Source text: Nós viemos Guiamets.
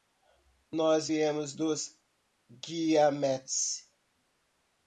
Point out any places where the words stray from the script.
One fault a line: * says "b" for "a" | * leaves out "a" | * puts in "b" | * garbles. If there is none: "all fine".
* puts in "dos"